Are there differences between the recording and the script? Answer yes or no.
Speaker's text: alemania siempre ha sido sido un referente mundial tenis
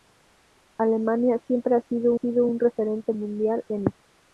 no